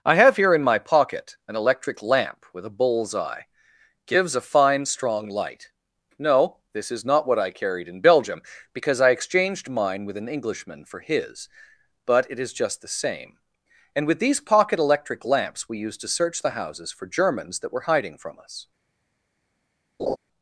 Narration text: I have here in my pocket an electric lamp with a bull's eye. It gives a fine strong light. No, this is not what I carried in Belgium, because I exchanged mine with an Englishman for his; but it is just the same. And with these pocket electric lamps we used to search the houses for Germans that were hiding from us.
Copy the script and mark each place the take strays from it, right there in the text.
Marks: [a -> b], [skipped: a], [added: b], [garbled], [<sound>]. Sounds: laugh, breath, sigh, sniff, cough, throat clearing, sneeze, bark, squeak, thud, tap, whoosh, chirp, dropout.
I have here in my pocket an electric lamp with a bull's eye. [skipped: It] gives a fine strong light. No, this is not what I carried in Belgium, because I exchanged mine with an Englishman for his; but it is just the same. And with these pocket electric lamps we used to search the houses for Germans that were hiding from us. [laugh]